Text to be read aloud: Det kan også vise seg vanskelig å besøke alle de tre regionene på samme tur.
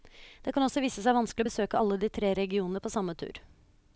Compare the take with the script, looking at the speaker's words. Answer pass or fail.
pass